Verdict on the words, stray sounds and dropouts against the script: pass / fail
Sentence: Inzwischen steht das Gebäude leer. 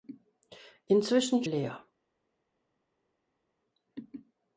fail